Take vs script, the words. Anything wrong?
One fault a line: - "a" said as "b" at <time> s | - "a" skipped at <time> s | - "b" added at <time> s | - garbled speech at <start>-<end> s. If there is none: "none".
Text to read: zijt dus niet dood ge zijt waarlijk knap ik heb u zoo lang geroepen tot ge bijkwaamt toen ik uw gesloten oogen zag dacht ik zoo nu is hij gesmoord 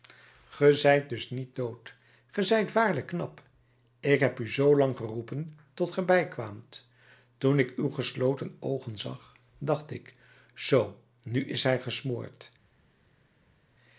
none